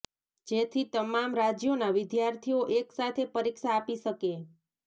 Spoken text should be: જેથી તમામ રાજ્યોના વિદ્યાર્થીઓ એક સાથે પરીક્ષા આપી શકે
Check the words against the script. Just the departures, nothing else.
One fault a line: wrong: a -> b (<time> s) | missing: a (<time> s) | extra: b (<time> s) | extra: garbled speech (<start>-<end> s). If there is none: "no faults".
no faults